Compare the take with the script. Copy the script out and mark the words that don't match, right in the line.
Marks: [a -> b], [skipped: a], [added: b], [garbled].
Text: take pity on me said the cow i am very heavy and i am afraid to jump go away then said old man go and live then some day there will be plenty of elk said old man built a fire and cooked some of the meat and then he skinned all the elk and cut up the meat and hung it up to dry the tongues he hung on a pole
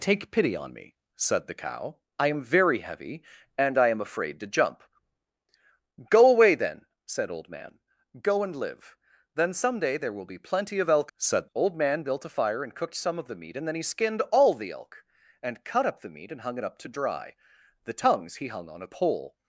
take pity on me said the cow i am very heavy and i am afraid to jump go away then said old man go and live then some day there will be plenty of elk said old man built a fire and cooked some of the meat and then he skinned all the elk and cut up the meat and hung it up to dry the tongues he hung on a pole